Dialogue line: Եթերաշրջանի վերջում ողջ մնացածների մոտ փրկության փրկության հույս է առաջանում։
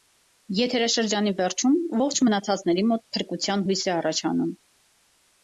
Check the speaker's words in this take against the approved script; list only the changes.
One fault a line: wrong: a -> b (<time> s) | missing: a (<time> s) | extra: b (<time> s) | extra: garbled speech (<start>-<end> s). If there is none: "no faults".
missing: փրկության (3.7 s)